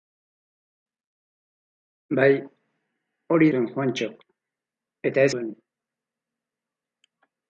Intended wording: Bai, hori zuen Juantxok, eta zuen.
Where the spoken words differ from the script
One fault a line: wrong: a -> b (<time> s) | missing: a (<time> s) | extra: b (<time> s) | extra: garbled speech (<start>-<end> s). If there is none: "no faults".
no faults